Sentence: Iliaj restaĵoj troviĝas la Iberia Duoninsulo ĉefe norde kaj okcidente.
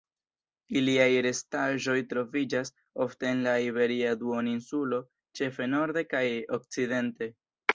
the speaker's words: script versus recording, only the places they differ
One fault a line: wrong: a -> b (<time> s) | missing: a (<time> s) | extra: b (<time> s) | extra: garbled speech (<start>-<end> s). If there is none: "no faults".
extra: ofte en (3.0 s)